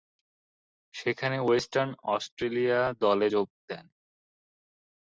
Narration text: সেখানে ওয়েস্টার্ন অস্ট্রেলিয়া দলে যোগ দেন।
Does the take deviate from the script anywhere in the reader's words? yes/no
no